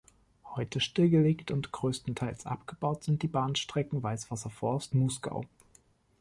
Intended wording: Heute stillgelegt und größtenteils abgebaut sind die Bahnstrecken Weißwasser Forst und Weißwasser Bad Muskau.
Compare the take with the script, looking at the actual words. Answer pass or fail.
fail